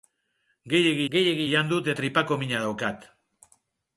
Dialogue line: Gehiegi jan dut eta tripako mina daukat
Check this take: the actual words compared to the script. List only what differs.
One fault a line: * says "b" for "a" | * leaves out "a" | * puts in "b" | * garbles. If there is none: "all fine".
* puts in "gehiegi"
* leaves out "eta"